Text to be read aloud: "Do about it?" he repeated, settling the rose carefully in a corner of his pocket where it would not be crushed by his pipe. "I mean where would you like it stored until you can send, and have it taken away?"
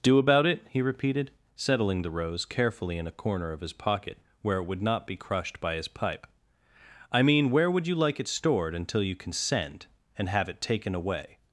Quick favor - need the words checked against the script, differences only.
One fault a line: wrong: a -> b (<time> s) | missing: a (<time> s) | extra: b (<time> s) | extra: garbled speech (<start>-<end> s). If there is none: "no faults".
no faults